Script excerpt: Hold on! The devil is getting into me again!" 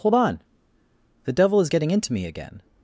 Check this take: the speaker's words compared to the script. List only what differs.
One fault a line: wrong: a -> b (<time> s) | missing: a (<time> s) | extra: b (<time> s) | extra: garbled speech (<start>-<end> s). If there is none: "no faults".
no faults